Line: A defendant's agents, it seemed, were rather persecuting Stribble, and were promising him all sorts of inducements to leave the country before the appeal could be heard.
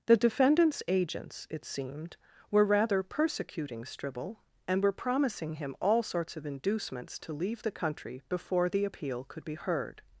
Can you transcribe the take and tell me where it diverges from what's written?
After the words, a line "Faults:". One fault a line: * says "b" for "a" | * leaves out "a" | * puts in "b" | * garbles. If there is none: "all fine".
The defendant's agents, it seemed, were rather persecuting Stribble, and were promising him all sorts of inducements to leave the country before the appeal could be heard.
Faults:
* says "The" for "A"